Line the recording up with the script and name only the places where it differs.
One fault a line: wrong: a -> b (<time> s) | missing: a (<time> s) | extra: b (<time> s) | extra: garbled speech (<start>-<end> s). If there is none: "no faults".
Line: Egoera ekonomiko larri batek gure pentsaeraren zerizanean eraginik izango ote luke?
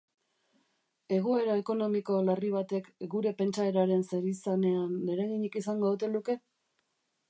no faults